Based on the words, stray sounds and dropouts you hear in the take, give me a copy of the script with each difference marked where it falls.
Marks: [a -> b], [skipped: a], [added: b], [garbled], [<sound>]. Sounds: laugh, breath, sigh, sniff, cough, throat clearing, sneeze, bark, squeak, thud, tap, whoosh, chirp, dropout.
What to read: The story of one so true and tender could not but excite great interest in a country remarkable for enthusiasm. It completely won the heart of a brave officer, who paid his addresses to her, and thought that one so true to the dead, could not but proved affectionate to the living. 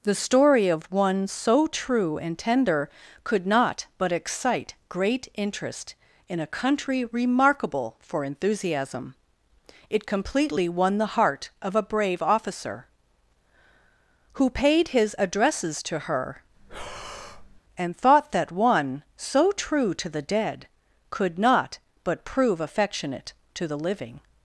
The story of one so true and tender could not but excite great interest in a country remarkable for enthusiasm. It completely won the heart of a brave officer, who paid his addresses to her, [breath] and thought that one so true to the dead, could not but [proved -> prove] affectionate to the living.